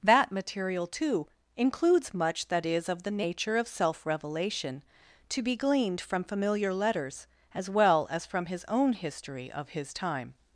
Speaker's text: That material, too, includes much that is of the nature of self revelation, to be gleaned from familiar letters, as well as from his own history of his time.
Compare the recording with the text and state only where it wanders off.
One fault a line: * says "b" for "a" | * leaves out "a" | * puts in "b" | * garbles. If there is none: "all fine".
all fine